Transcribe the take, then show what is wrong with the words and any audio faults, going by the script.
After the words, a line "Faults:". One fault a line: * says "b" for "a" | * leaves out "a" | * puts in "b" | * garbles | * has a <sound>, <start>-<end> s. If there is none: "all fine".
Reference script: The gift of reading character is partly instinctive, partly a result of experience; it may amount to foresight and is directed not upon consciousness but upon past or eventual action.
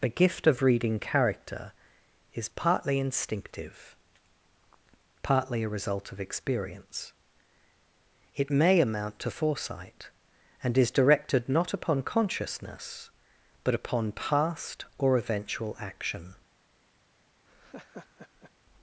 The gift of reading character is partly instinctive, partly a result of experience; it may amount to foresight and is directed not upon consciousness but upon past or eventual action.
Faults:
* has a laugh, 17.5-18.5 s